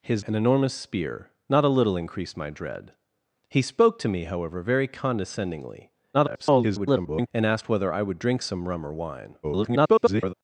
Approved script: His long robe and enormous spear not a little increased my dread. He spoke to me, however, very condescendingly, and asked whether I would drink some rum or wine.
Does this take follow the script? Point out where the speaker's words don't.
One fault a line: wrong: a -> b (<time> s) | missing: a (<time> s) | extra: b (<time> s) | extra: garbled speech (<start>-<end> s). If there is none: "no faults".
missing: long robe (0.2 s)
extra: garbled speech (6.1-7.3 s)
extra: garbled speech (9.4-10.3 s)